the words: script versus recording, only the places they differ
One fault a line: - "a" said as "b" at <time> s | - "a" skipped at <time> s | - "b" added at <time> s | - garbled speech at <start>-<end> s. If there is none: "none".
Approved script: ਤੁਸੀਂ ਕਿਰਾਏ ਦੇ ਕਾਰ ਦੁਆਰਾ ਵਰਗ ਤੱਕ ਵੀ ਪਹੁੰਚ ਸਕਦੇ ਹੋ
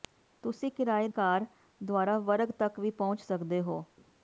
- "ਦੇ" skipped at 1.1 s